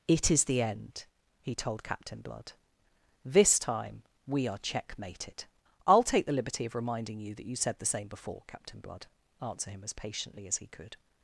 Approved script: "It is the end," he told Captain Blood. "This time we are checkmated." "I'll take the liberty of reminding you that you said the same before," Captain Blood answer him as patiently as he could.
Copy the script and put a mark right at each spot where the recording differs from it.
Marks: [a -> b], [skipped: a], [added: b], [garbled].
"It is the end," he told Captain Blood. "This time we are checkmated." "I'll take the liberty of reminding you that you said the same before," Captain Blood answer him as patiently as he could.